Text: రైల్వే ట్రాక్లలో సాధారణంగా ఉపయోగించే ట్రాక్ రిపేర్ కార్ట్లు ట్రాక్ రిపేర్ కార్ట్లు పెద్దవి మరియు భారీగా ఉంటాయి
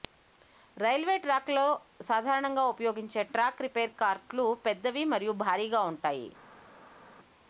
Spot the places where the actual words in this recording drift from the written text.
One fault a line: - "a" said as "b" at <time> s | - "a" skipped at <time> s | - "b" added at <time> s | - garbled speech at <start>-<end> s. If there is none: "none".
- "ట్రాక్ రిపేర్ కార్ట్లు" skipped at 4.5 s